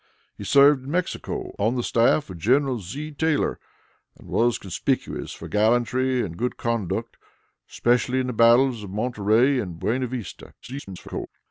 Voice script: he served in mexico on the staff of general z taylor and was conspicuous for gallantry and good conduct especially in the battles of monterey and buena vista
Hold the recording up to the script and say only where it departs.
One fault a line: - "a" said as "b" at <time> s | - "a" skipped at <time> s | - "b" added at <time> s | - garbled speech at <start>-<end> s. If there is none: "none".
- garbled speech at 10.6-11.3 s